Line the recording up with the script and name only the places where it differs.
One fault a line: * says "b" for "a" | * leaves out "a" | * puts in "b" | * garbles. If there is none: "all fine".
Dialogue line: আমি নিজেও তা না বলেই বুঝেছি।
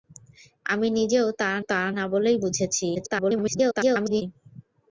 * puts in "তা"
* garbles